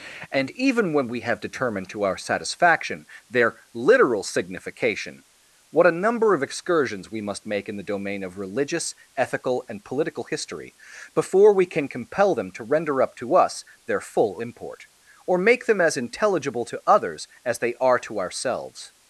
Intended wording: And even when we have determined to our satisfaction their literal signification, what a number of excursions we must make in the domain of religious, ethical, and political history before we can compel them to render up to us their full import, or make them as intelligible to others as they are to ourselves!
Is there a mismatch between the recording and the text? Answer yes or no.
no